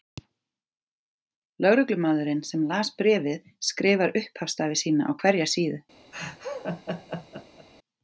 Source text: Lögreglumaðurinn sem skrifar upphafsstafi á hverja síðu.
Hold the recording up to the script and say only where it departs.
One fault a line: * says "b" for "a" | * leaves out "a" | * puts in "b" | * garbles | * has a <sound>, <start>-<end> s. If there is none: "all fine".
* puts in "las bréfið"
* puts in "sína"
* has a laugh, 6.1-7.7 s